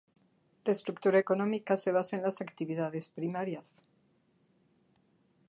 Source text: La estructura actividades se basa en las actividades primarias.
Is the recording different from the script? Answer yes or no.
yes